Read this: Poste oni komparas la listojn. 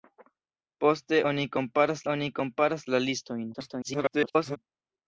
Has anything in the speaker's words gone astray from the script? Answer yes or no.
yes